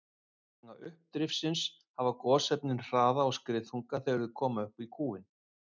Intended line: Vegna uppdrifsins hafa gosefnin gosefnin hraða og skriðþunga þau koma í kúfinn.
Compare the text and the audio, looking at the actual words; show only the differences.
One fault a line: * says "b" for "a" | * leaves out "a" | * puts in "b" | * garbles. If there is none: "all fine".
* leaves out "gosefnin"
* puts in "þegar"
* puts in "upp"